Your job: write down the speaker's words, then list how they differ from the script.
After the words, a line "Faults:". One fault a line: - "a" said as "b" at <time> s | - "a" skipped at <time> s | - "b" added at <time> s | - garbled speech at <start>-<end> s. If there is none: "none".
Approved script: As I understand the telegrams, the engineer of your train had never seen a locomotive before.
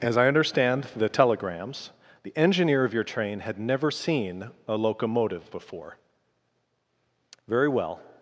As I understand the telegrams, the engineer of your train had never seen a locomotive before. Very well
Faults:
- "Very well" added at 7.5 s